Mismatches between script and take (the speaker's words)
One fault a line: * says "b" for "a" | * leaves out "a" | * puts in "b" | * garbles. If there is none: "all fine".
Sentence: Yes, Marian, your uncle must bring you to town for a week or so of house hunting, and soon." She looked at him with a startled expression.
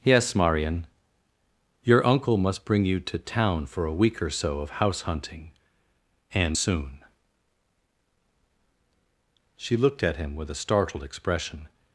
all fine